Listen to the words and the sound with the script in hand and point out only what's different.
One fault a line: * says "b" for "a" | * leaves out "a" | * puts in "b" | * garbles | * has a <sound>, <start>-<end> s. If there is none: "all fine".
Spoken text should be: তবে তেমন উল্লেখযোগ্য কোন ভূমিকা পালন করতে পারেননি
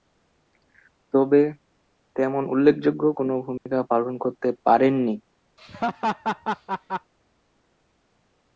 * has a dropout, 3.6-3.7 s
* has a laugh, 5.6-7.1 s